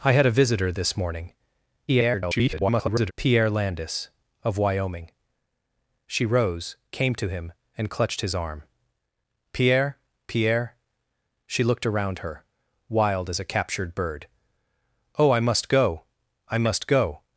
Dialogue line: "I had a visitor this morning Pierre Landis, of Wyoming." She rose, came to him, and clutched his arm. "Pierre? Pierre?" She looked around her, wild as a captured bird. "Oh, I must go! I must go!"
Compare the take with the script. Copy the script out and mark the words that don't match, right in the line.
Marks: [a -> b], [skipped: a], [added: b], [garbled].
"I had a visitor this morning [garbled] Pierre Landis, of Wyoming." She rose, came to him, and clutched his arm. "Pierre? Pierre?" She looked around her, wild as a captured bird. "Oh, I must go! I must go!"